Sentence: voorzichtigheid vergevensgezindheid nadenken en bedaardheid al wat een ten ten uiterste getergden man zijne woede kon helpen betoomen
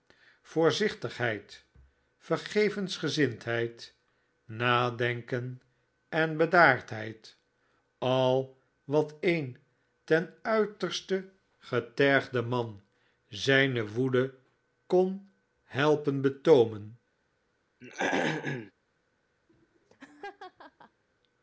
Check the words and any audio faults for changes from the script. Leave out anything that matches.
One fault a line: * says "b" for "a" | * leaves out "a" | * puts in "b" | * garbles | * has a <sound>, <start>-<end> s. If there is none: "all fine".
* leaves out "ten"
* has a throat clearing, 17.8-18.7 s
* has a laugh, 19.5-21.0 s